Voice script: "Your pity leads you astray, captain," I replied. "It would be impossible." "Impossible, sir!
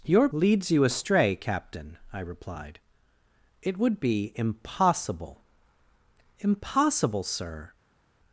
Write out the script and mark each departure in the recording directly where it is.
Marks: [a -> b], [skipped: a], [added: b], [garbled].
"Your [skipped: pity] leads you astray, captain," I replied. "It would be impossible." "Impossible, sir!